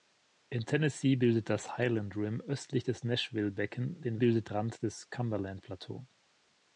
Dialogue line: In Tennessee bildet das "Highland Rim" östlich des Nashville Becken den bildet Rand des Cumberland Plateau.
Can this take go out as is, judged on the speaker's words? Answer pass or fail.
pass